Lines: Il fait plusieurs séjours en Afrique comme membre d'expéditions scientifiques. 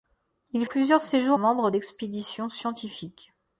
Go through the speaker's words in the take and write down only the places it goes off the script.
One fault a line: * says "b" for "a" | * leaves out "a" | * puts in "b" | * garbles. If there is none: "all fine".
* leaves out "fait"
* leaves out "en Afrique comme"